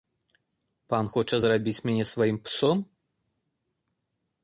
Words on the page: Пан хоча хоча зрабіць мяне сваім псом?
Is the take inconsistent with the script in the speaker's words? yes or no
yes